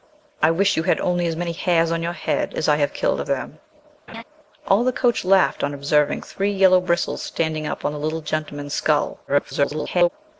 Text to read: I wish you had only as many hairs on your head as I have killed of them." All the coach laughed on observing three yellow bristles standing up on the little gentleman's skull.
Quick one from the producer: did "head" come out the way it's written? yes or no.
yes